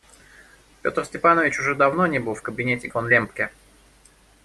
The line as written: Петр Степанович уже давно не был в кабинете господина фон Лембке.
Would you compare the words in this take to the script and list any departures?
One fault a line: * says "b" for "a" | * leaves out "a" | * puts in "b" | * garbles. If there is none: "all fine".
* leaves out "господина"